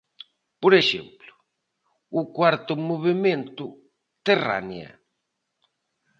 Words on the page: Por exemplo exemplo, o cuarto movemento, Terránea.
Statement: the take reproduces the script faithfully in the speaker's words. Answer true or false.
false